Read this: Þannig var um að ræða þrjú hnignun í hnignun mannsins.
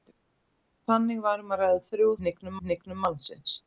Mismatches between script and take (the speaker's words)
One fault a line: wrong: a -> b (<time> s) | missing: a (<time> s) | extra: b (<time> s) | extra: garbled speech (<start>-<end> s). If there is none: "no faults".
no faults